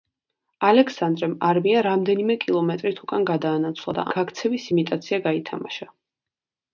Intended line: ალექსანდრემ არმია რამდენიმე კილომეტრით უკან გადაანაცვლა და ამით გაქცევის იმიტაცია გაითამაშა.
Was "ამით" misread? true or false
true